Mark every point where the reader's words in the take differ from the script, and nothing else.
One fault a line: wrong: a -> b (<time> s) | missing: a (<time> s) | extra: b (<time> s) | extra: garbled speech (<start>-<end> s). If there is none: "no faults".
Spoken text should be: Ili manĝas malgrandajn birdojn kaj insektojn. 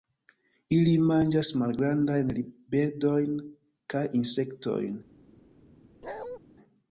no faults